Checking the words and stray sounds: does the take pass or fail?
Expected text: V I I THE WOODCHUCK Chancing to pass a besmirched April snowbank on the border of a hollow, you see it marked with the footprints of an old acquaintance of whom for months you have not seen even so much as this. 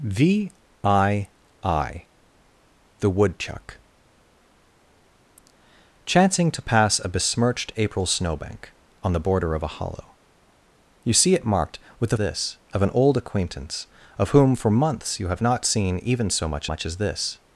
fail